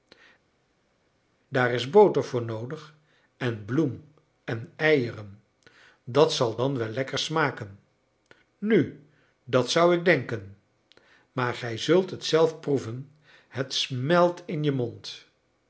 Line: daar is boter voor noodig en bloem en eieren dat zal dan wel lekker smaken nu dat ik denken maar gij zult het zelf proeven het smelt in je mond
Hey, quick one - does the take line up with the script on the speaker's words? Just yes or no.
no